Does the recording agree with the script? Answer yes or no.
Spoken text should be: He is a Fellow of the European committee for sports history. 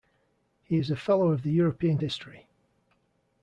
no